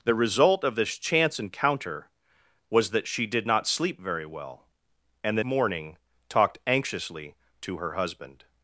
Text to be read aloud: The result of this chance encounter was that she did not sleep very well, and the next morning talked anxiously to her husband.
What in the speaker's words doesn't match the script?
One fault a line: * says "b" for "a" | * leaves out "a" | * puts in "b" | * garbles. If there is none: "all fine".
* leaves out "next"